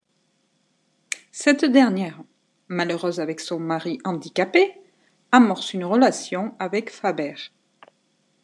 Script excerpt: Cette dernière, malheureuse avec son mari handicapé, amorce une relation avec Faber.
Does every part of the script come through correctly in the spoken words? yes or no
yes